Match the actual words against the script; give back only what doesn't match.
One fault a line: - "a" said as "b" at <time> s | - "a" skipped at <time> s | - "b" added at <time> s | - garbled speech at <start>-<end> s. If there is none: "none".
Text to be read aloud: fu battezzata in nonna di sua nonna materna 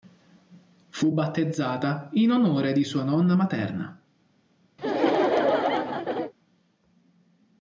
- "nonna" said as "onore" at 2.3 s